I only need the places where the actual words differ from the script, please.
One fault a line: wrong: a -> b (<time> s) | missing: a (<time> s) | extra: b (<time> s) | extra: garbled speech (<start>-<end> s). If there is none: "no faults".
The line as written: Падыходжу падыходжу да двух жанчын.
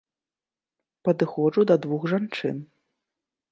missing: падыходжу (1.6 s)